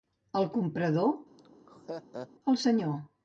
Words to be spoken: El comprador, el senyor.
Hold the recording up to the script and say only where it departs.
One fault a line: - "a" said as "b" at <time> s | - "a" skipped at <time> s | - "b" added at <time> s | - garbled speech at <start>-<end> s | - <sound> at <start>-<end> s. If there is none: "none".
- laugh at 1.4-2.3 s